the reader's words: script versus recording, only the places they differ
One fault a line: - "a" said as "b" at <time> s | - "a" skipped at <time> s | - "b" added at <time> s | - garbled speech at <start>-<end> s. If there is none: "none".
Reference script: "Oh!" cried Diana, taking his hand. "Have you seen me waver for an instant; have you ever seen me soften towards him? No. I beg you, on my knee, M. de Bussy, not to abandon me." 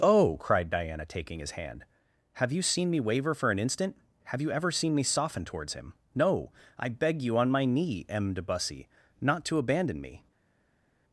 none